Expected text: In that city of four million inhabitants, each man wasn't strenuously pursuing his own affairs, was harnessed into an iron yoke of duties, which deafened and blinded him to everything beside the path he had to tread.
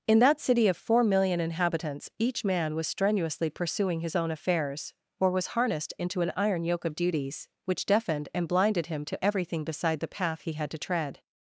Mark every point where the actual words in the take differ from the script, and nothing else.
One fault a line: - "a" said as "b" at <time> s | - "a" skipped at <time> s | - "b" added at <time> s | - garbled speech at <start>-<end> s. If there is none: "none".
- "wasn't" said as "was" at 2.8 s
- "or" added at 5.2 s